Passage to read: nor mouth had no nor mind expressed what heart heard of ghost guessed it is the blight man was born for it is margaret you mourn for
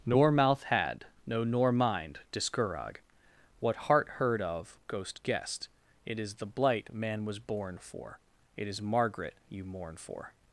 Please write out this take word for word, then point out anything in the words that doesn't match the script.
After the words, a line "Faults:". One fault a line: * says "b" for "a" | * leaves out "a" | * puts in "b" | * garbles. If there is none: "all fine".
nor mouth had no nor mind discourag what heart heard of ghost guessed it is the blight man was born for it is margaret you mourn for
Faults:
* says "discourag" for "expressed"